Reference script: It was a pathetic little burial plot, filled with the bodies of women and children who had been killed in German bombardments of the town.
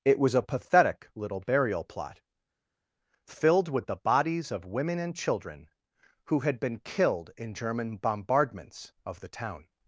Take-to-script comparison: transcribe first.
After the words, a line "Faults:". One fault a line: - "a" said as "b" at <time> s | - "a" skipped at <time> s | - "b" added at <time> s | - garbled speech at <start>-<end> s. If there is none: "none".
It was a pathetic little burial plot, filled with the bodies of women and children who had been killed in German bombardments of the town.
Faults:
none